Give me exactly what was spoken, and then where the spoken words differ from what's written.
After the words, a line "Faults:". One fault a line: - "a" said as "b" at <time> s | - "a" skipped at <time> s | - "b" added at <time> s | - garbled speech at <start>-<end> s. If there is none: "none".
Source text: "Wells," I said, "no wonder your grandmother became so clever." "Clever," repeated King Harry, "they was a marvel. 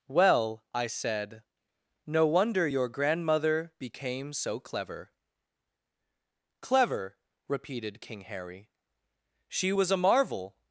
"Well," I said, "no wonder your grandmother became so clever." "Clever," repeated King Harry, "she was a marvel.
Faults:
- "Wells" said as "Well" at 0.1 s
- "they" said as "she" at 9.5 s